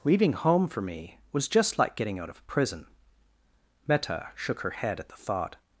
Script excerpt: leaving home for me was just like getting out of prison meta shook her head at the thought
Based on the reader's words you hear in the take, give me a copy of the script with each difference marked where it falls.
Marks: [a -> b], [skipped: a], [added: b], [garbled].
leaving home for me was just like getting out of prison meta shook her head at the thought